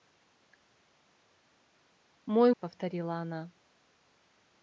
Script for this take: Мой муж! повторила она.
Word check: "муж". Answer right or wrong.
wrong